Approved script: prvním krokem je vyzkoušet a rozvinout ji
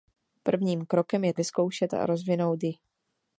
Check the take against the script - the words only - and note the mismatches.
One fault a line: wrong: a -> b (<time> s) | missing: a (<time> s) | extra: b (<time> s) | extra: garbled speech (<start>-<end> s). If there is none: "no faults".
no faults